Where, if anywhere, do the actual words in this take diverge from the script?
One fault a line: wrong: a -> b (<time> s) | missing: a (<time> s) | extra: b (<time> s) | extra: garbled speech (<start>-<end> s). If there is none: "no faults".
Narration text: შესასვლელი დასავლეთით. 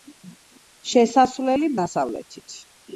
no faults